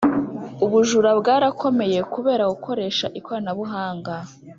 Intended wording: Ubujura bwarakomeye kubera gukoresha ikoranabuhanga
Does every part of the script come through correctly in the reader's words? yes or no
yes